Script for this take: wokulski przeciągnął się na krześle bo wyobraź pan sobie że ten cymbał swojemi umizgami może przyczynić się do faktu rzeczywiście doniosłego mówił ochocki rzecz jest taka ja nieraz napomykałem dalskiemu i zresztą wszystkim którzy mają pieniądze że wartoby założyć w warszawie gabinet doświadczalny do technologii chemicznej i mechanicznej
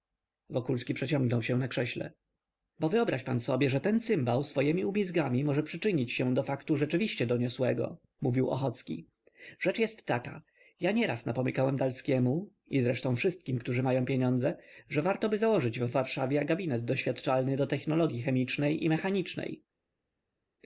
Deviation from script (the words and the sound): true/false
false